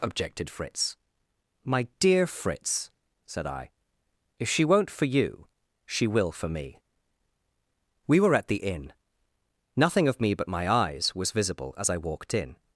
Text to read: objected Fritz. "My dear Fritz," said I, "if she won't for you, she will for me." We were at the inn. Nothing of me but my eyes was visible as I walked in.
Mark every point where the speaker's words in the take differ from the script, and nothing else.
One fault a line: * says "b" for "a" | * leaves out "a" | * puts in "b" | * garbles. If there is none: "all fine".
all fine